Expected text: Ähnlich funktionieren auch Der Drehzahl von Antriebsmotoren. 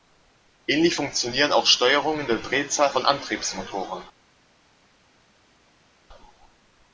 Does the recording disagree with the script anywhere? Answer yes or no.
yes